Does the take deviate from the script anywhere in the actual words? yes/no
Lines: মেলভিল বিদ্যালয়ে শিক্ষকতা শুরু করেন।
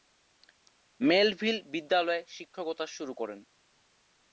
no